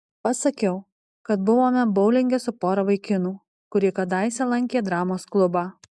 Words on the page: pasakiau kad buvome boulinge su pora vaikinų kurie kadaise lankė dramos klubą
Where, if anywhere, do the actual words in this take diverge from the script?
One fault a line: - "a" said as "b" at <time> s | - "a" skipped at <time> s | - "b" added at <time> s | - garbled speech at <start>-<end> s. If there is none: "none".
none